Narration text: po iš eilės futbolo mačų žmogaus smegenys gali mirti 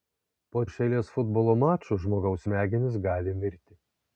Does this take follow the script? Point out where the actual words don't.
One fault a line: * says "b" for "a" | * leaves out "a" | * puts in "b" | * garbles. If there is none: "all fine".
all fine